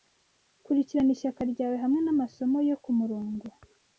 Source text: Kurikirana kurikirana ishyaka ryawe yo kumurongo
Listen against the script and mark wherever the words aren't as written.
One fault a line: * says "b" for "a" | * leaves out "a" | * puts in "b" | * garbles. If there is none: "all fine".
* leaves out "kurikirana"
* puts in "hamwe namasomo"